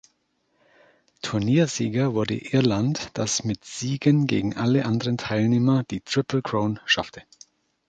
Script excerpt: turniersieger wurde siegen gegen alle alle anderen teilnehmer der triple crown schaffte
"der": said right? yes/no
no